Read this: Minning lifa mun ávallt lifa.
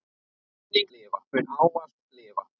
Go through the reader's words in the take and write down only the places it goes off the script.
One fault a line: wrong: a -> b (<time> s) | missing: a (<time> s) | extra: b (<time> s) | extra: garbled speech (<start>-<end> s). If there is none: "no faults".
no faults